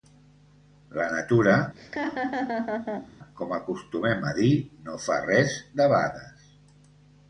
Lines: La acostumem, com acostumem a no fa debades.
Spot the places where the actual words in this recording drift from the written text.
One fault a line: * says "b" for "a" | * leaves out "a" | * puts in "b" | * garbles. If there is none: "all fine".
* says "natura" for "acostumem"
* puts in "dir"
* puts in "res"